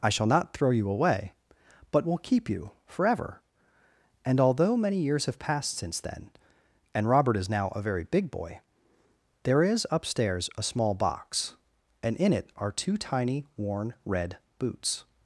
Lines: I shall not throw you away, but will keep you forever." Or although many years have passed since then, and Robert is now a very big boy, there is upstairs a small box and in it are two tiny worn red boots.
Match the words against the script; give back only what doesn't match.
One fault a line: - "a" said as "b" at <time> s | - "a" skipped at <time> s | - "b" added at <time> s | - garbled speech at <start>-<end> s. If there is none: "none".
- "Or" said as "And" at 4.2 s